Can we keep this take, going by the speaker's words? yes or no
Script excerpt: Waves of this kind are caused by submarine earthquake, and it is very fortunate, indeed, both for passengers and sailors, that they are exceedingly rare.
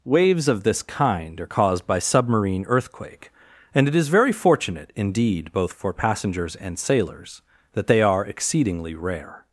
yes